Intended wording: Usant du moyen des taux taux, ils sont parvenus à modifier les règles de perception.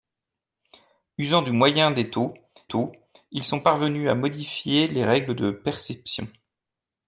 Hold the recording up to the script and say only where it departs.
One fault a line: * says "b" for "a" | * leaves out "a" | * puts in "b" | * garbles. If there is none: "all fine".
all fine